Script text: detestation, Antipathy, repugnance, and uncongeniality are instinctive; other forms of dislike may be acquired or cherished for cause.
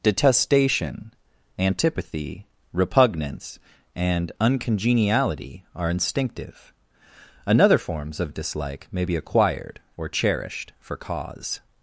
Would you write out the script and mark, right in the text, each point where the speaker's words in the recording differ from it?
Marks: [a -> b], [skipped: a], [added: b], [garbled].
detestation, Antipathy, repugnance, and uncongeniality are instinctive; [other -> another] forms of dislike may be acquired or cherished for cause.